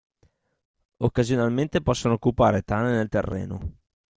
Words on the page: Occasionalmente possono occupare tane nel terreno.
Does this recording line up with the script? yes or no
yes